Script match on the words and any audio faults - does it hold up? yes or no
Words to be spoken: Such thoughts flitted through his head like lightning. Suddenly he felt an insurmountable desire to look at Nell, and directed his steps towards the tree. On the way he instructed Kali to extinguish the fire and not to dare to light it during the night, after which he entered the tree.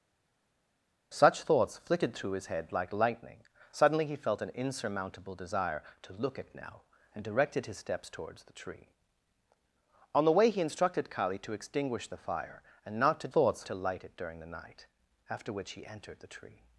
no